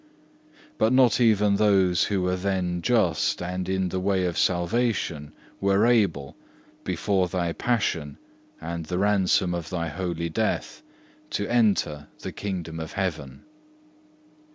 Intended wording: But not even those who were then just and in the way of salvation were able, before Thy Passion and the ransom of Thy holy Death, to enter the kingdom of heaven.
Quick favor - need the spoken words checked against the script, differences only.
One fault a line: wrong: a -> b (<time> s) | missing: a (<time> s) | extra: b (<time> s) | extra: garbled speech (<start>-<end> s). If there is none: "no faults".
no faults